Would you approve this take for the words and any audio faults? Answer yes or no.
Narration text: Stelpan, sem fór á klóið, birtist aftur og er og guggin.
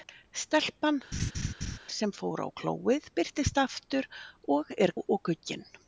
no